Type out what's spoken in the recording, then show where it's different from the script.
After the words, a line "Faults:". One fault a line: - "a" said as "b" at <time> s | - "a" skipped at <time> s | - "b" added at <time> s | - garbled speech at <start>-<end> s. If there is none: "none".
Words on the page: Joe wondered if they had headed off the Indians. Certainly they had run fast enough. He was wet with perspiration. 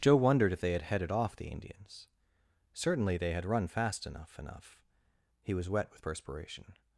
Joe wondered if they had headed off the Indians. Certainly they had run fast enough enough. He was wet with perspiration.
Faults:
- "enough" added at 4.4 s